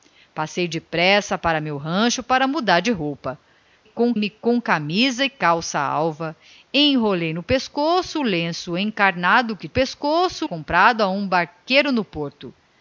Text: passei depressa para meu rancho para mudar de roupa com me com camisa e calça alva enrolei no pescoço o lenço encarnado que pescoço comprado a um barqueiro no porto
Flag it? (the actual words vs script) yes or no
no